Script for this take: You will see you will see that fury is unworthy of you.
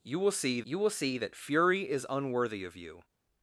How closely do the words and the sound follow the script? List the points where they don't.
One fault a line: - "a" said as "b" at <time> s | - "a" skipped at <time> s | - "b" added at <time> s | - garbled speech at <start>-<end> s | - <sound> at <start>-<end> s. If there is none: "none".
none